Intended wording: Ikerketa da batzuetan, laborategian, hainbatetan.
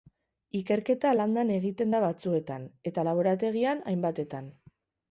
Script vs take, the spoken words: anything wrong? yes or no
yes